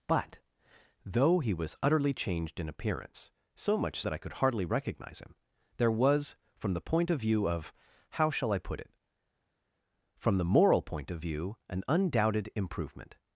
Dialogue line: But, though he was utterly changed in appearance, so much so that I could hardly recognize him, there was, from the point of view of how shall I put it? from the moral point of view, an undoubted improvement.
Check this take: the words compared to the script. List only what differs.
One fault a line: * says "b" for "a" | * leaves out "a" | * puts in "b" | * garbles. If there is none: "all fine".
* leaves out "so"